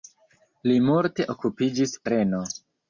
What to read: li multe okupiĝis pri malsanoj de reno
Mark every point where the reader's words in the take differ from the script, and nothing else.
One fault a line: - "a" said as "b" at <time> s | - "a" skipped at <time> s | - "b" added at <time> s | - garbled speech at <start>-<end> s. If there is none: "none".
- "pri malsanoj de" skipped at 1.9 s